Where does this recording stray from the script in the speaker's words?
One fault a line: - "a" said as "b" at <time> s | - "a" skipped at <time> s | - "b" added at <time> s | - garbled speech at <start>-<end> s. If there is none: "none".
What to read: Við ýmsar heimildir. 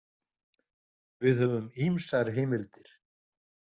- "höfum" added at 1.4 s